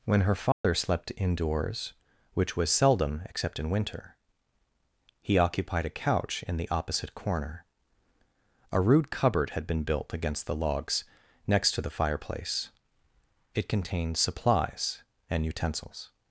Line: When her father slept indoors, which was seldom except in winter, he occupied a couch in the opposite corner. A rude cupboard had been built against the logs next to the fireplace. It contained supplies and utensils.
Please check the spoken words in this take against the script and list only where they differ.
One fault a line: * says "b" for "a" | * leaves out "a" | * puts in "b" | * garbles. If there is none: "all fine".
all fine